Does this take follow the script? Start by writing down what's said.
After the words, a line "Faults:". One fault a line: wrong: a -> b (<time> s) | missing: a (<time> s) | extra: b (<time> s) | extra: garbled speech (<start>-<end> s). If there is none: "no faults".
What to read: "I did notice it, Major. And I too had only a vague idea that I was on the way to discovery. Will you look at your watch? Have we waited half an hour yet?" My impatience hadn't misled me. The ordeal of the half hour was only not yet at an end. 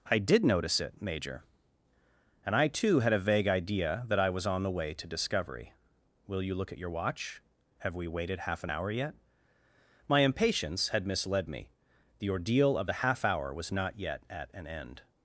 "I did notice it, Major. And I too had a vague idea that I was on the way to discovery. Will you look at your watch? Have we waited half an hour yet?" My impatience had misled me. The ordeal of the half hour was not yet at an end.
Faults:
missing: only (3.1 s)
wrong: hadn't -> had (10.9 s)
missing: only (13.7 s)